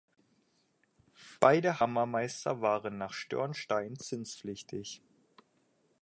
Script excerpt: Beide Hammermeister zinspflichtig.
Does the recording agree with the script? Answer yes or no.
no